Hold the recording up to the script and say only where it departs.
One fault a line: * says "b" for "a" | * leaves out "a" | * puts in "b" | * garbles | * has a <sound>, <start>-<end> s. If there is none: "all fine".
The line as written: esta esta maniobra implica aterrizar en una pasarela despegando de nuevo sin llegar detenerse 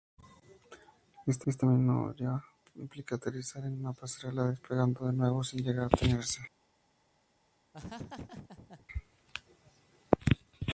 * has a laugh, 7.7-8.9 s